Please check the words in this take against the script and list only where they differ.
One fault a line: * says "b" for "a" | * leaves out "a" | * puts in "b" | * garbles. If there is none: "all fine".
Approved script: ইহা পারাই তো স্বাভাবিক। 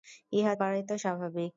all fine